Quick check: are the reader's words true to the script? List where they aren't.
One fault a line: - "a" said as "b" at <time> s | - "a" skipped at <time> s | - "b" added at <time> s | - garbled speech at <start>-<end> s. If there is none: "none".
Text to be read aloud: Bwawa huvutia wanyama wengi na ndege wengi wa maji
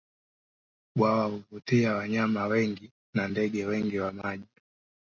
none